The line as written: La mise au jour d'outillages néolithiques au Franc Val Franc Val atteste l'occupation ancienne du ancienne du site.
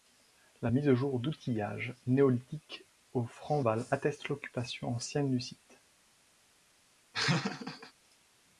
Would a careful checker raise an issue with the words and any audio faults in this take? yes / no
yes